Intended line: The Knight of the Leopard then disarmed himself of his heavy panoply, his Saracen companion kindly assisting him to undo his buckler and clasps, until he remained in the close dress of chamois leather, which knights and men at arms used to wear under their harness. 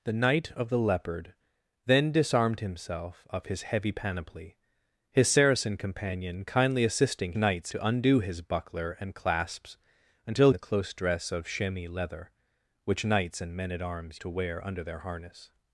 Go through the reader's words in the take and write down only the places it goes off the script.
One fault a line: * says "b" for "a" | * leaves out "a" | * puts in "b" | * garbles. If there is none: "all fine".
* says "knights" for "him"
* leaves out "he remained in"
* leaves out "used"